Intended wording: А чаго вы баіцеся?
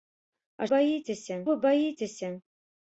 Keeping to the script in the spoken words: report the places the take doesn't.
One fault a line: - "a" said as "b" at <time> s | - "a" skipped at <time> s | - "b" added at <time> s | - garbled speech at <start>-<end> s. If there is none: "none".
- "чаго" said as "баіцеся" at 0.7 s